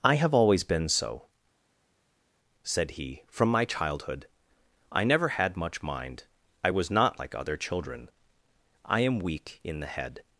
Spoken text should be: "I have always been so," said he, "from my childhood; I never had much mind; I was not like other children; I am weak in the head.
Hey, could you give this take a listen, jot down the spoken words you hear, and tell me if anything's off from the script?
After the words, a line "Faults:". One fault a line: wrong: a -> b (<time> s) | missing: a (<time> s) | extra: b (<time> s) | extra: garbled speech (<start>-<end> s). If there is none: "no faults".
"I have always been so," said he, "from my childhood; I never had much mind; I was not like other children; I am weak in the head.
Faults:
no faults